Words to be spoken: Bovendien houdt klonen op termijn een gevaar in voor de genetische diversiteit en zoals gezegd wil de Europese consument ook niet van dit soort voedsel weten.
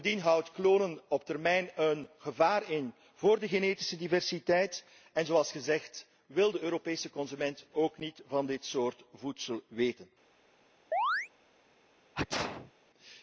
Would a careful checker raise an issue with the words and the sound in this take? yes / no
yes